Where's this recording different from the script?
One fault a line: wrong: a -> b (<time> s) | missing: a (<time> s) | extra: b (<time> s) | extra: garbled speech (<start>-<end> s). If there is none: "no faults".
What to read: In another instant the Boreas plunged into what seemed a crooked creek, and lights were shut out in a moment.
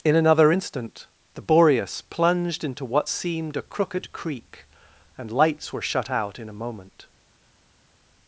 no faults